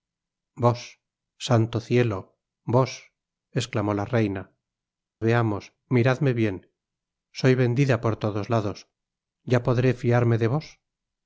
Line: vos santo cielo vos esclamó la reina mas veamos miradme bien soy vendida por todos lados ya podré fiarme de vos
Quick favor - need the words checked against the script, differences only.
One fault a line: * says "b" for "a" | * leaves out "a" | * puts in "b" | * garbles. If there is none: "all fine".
* leaves out "mas"